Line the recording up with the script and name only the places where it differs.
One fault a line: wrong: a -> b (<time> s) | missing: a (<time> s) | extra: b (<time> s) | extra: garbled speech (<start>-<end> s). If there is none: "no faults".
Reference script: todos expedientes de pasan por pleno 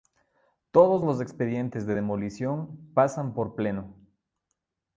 extra: los (1.0 s)
extra: demolición (1.9 s)